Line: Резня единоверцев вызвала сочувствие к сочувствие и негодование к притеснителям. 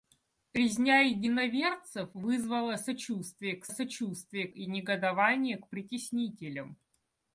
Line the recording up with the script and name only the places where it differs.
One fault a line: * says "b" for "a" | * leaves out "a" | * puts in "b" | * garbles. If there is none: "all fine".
all fine